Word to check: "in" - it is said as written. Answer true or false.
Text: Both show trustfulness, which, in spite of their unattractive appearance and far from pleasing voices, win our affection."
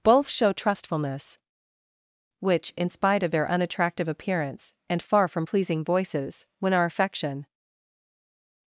true